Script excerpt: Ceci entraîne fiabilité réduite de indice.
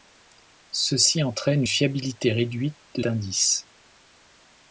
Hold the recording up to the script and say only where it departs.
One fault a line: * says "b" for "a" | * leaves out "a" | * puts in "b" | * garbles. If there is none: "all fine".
all fine